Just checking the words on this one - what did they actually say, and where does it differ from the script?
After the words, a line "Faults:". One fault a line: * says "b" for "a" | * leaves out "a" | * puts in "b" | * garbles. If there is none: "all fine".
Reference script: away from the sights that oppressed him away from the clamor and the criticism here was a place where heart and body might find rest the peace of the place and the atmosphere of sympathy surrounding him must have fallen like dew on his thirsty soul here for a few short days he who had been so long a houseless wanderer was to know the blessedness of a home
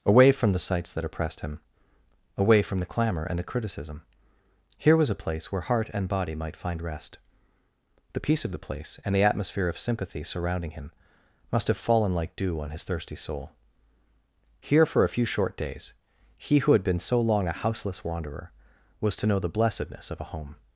away from the sights that oppressed him away from the clamor and the criticism here was a place where heart and body might find rest the peace of the place and the atmosphere of sympathy surrounding him must have fallen like dew on his thirsty soul here for a few short days he who had been so long a houseless wanderer was to know the blessedness of a home
Faults:
all fine